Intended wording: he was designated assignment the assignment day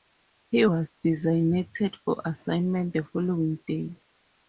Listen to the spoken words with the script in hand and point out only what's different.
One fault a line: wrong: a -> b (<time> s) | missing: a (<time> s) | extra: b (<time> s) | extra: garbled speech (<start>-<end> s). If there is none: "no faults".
extra: for (2.0 s)
wrong: assignment -> following (3.0 s)